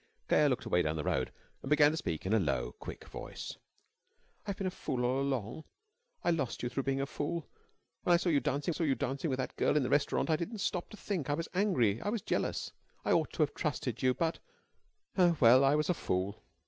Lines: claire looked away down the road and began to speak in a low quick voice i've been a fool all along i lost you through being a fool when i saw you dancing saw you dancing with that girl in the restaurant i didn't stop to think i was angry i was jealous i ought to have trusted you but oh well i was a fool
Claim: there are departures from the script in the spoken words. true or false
false